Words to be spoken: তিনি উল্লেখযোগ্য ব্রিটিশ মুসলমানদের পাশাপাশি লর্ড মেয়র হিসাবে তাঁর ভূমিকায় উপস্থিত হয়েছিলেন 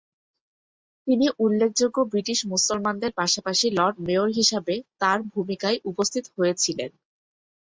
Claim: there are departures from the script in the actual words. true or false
false